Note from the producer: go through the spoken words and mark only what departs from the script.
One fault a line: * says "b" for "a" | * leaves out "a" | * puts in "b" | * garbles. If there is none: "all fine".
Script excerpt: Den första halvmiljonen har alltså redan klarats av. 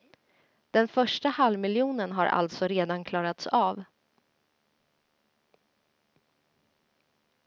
all fine